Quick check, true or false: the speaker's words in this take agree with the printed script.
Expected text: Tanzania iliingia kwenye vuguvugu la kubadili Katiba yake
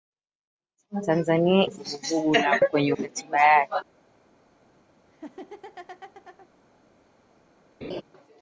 false